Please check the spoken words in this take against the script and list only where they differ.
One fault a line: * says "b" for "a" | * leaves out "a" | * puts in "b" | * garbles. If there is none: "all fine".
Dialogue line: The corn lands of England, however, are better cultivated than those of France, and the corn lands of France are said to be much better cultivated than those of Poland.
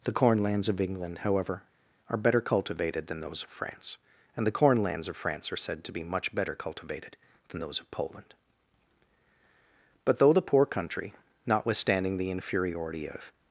* puts in "But though the poor country notwithstanding the inferiority of"